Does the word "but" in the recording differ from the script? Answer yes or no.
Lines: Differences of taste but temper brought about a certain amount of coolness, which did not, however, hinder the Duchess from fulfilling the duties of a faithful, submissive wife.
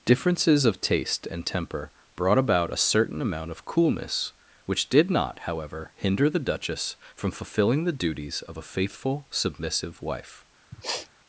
yes